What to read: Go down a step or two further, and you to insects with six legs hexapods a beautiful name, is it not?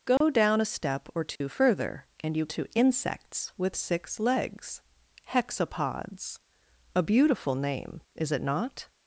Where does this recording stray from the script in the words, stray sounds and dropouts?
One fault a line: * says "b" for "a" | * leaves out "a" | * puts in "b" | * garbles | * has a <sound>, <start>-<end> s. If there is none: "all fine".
* has a dropout, 0.2-0.2 s
* has a dropout, 1.4-1.4 s